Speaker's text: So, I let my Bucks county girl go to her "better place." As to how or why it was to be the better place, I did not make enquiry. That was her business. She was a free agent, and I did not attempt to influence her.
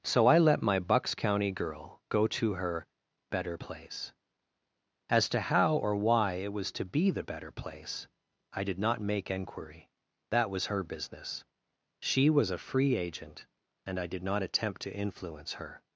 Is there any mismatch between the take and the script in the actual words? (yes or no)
no